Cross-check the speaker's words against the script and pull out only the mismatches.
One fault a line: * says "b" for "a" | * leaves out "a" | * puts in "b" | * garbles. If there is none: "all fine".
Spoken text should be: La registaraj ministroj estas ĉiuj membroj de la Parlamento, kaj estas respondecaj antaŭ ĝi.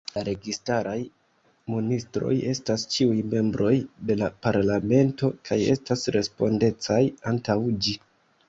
all fine